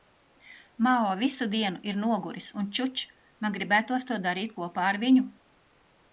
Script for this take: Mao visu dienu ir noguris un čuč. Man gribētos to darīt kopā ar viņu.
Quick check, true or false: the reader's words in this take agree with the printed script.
true